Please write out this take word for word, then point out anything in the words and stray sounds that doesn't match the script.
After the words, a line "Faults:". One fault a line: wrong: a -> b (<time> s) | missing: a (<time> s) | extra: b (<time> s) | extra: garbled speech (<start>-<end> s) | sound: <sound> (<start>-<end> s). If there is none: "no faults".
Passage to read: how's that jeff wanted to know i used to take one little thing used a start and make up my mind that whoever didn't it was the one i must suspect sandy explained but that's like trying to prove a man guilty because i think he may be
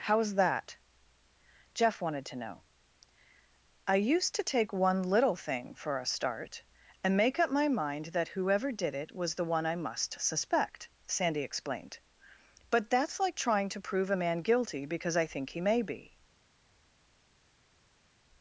how's that jeff wanted to know i used to take one little thing for a start and make up my mind that whoever did it was the one i must suspect sandy explained but that's like trying to prove a man guilty because i think he may be
Faults:
wrong: used -> for (5.8 s)
wrong: didn't -> did (8.7 s)